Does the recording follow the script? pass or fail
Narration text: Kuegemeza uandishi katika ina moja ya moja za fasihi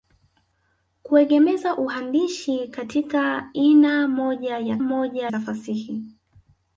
pass